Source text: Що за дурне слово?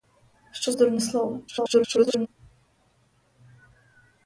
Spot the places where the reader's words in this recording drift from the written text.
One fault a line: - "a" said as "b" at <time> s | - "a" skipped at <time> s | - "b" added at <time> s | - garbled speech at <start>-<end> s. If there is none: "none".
- "за" skipped at 0.7 s
- garbled speech at 1.5-2.3 s